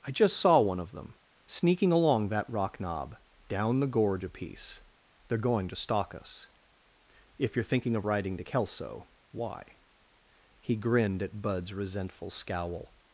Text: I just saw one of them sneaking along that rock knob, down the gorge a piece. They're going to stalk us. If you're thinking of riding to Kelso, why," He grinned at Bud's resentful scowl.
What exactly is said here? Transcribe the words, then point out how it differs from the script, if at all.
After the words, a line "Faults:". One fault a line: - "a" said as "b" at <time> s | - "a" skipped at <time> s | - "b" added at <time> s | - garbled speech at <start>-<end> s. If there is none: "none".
I just saw one of them sneaking along that rock knob, down the gorge a piece. They're going to stalk us. If you're thinking of riding to Kelso, why," He grinned at Bud's resentful scowl.
Faults:
none